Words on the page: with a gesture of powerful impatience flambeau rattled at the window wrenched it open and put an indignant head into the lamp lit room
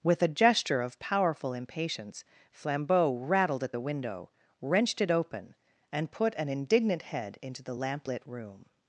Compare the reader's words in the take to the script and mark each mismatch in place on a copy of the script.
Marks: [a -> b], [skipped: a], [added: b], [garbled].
with a gesture of powerful impatience flambeau rattled at the window wrenched it open and put an indignant head into the lamp lit room